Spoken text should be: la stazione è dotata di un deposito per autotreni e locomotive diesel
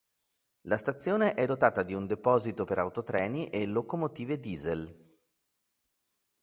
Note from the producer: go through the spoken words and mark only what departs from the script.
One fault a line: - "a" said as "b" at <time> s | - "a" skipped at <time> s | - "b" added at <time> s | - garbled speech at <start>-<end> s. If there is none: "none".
none